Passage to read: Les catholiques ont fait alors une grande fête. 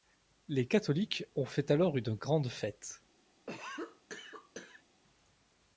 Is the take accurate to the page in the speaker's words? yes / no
yes